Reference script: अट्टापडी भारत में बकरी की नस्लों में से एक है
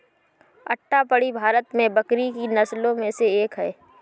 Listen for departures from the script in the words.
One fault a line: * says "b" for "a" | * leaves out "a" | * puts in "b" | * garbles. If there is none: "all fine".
all fine